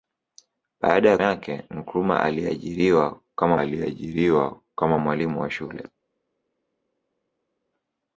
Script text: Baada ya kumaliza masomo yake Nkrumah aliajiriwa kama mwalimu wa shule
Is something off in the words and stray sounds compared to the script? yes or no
yes